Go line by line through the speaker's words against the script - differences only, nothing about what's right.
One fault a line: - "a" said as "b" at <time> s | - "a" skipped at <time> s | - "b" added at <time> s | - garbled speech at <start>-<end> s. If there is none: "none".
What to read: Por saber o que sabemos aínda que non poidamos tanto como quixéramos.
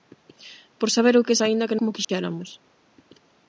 - "sabemos" skipped at 1.4 s
- "non poidamos tanto" skipped at 1.8 s